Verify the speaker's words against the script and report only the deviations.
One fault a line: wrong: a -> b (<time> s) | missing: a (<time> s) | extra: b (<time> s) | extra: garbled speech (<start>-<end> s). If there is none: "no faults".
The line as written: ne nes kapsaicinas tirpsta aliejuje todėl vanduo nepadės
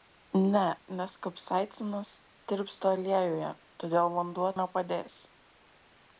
no faults